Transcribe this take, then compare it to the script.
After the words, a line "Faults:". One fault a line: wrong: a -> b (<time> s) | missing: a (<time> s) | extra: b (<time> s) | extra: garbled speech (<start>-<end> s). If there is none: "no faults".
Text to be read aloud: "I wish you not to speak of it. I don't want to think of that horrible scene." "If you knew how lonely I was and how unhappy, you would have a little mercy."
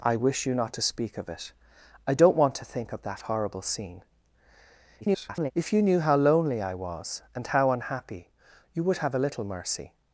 "I wish you not to speak of it. I don't want to think of that horrible scene." [garbled] "If you knew how lonely I was and how unhappy, you would have a little mercy."
Faults:
extra: garbled speech (5.0-5.5 s)